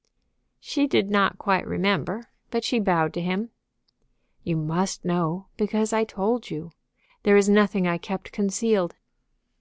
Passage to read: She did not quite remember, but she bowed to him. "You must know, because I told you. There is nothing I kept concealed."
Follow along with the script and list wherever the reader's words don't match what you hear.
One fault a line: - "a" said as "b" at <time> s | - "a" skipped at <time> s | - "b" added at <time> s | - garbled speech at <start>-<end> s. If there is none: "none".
none